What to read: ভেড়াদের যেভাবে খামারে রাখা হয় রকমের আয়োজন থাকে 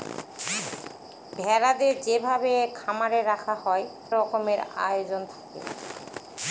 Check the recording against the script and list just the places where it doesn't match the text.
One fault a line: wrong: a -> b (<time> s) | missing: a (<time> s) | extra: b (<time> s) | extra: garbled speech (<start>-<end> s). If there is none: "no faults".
no faults